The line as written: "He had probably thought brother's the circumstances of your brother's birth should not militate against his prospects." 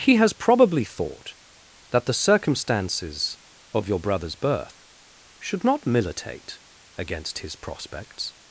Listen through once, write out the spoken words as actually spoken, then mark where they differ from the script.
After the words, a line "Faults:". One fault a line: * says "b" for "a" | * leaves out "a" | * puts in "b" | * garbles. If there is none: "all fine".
"He has probably thought that the circumstances of your brother's birth should not militate against his prospects."
Faults:
* says "has" for "had"
* says "that" for "brother's"